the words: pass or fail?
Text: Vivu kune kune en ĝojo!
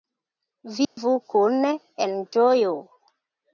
fail